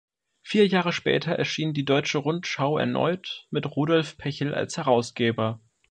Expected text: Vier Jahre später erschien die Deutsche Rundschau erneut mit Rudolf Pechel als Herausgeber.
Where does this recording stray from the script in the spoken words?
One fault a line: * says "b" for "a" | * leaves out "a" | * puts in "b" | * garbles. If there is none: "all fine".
all fine